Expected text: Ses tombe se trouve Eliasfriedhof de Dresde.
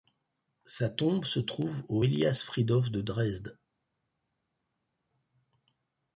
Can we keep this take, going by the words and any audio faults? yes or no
no